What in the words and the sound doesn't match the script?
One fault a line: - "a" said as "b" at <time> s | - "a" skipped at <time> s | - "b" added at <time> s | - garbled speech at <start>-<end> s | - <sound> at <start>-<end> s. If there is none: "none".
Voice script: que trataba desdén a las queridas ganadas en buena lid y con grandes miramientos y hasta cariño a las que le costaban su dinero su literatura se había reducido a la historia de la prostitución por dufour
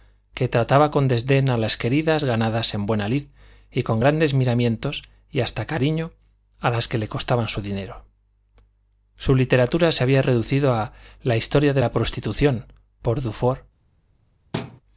- "con" added at 0.9 s
- thud at 14.5-14.8 s